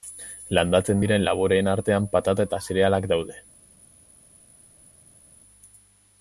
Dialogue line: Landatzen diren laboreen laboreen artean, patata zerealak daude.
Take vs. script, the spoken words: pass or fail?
fail